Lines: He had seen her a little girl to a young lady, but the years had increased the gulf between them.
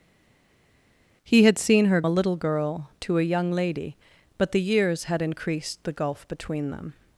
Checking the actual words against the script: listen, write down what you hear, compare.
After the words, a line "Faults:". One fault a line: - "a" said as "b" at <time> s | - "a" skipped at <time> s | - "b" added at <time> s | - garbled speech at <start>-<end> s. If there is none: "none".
He had seen her a little girl to a young lady, but the years had increased the gulf between them.
Faults:
none